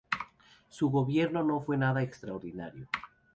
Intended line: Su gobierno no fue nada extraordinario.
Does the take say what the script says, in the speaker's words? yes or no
yes